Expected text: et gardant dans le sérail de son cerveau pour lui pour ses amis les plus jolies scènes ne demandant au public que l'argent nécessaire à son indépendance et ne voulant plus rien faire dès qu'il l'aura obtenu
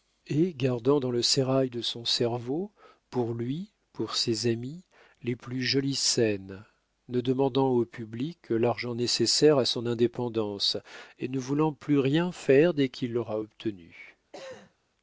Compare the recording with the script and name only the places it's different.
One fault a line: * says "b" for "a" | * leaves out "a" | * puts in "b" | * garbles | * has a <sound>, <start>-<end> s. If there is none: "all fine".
* has a cough, 14.3-14.7 s